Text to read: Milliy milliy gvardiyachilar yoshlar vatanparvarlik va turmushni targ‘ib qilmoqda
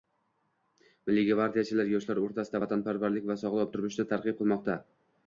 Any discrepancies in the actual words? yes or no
yes